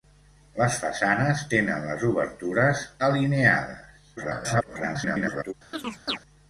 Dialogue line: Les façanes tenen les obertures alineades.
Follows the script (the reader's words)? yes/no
no